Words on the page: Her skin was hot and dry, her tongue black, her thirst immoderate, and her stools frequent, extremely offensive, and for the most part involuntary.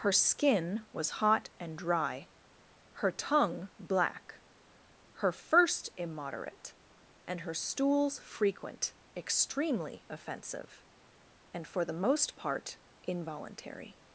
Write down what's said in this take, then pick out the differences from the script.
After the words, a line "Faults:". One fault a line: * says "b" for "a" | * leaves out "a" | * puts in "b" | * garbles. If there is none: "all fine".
Her skin was hot and dry, her tongue black, her first immoderate, and her stools frequent, extremely offensive, and for the most part involuntary.
Faults:
* says "first" for "thirst"